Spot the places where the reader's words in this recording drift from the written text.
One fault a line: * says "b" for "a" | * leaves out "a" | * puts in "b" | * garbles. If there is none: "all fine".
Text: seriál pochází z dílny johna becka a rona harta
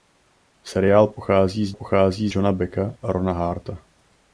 * says "pochází" for "dílny"